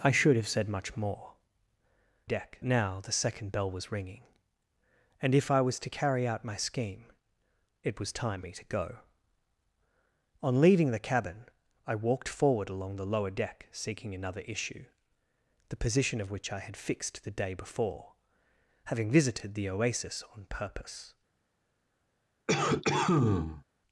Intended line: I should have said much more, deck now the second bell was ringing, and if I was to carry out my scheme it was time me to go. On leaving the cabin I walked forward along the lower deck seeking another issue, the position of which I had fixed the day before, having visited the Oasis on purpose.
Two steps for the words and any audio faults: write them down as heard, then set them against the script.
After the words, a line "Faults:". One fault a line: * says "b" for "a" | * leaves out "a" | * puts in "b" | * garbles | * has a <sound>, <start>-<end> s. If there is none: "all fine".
I should have said much more, deck now the second bell was ringing, and if I was to carry out my scheme it was time me to go. On leaving the cabin I walked forward along the lower deck seeking another issue, the position of which I had fixed the day before, having visited the Oasis on purpose.
Faults:
* has a cough, 22.5-23.6 s